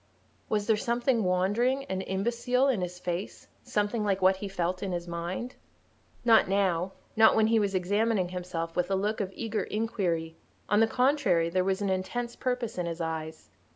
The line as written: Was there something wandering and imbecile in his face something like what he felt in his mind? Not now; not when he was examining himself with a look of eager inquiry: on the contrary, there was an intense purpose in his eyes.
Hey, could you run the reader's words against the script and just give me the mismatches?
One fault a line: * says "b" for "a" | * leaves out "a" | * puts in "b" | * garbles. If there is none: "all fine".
all fine